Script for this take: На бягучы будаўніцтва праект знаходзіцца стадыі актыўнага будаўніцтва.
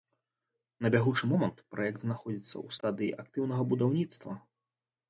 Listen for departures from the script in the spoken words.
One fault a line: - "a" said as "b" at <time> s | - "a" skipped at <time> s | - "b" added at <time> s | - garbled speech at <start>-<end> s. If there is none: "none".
- "будаўніцтва" said as "момант" at 1.3 s
- "ў" added at 2.7 s